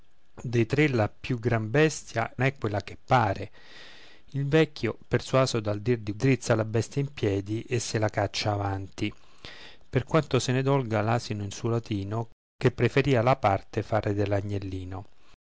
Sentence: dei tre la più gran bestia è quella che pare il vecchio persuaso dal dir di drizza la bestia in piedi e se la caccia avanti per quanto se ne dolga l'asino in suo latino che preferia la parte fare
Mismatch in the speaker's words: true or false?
false